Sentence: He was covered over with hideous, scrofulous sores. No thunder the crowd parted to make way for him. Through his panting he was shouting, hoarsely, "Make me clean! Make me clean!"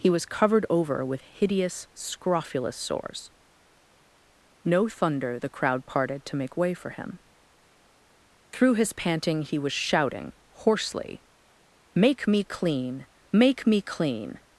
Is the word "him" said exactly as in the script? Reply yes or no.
yes